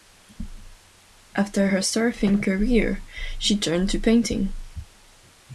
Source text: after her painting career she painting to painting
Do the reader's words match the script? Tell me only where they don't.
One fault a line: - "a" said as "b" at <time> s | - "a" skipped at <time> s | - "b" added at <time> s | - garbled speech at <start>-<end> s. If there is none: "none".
- "painting" said as "surfing" at 1.8 s
- "painting" said as "turned" at 3.6 s